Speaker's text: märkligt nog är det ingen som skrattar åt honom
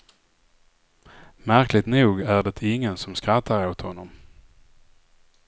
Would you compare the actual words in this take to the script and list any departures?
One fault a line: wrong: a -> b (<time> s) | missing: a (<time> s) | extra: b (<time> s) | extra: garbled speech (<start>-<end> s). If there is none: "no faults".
no faults